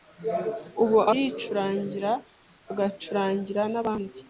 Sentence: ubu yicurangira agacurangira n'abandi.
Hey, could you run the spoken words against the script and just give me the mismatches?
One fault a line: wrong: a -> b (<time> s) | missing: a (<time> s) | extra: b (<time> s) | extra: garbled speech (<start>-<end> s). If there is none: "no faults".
no faults